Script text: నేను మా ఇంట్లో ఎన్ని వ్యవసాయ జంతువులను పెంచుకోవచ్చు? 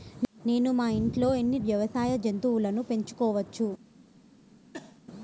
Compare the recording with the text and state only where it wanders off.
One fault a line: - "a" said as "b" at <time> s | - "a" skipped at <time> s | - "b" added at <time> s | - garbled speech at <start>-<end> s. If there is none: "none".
none